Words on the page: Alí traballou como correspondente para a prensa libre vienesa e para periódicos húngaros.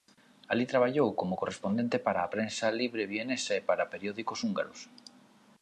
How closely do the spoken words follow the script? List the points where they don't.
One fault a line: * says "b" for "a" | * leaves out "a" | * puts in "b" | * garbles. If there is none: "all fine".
all fine